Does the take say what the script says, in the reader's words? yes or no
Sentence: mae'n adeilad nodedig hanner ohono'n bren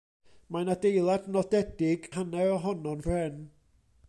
yes